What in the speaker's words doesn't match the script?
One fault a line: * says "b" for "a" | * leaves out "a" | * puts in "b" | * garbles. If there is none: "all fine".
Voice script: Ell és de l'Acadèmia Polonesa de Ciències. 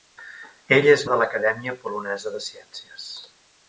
all fine